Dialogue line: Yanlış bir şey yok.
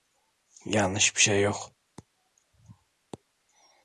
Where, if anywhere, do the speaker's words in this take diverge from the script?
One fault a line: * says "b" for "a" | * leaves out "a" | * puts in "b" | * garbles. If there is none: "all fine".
all fine